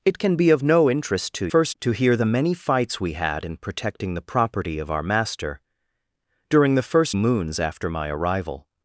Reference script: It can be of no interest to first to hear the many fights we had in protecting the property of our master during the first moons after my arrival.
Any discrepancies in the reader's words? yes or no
no